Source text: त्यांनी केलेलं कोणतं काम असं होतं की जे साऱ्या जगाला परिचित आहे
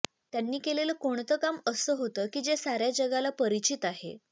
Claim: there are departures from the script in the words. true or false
false